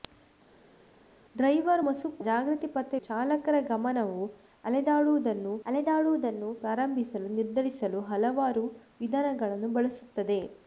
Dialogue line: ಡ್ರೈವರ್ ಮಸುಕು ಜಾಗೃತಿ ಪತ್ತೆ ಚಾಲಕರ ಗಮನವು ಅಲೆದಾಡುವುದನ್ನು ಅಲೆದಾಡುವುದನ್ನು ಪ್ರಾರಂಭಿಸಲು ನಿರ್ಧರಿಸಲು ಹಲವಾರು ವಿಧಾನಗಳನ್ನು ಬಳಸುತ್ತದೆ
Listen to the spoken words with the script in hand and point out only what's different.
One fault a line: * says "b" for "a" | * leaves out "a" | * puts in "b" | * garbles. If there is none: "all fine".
all fine